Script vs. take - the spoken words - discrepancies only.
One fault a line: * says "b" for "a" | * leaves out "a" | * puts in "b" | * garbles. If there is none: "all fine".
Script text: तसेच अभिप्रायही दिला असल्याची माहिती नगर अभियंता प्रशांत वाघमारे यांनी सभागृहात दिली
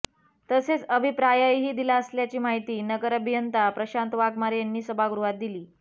all fine